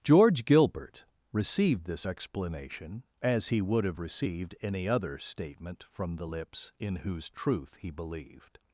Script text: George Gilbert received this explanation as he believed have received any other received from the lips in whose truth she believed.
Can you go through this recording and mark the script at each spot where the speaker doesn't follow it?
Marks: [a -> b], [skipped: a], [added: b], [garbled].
George Gilbert received this explanation as he [believed -> would] have received any other [received -> statement] from the lips in whose truth [she -> he] believed.